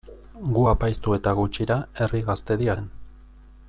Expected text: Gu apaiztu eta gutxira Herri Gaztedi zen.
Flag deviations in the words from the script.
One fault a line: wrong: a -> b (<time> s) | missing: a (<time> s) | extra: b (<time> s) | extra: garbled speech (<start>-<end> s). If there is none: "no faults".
no faults